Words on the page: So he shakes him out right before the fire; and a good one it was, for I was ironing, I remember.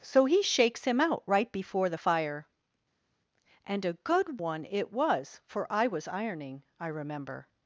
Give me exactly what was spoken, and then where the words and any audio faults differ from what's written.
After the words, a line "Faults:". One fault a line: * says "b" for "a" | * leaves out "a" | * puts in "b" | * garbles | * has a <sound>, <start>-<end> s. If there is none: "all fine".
So he shakes him out right before the fire; and a good one it was, for I was ironing, I remember.
Faults:
all fine